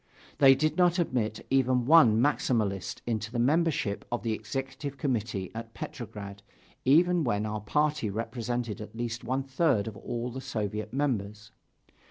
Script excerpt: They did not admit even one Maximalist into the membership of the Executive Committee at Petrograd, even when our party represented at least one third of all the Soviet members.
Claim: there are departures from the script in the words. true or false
false